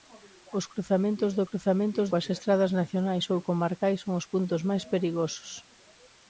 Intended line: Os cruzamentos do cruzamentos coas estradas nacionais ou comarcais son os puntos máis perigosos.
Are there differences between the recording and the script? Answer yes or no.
no